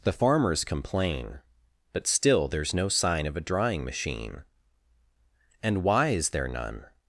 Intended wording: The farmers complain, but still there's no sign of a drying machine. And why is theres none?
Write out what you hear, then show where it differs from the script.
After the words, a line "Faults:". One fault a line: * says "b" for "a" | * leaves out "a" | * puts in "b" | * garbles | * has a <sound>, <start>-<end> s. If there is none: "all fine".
The farmers complain, but still there's no sign of a drying machine. And why is there none?
Faults:
* says "there" for "theres"